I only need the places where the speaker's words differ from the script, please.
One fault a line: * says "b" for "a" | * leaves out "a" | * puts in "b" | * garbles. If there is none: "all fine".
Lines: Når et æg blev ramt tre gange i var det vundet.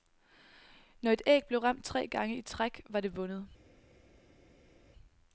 * puts in "træk"